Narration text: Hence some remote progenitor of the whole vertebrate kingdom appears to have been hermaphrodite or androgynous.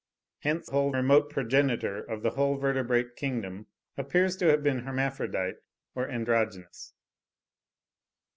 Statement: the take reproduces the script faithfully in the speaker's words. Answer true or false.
false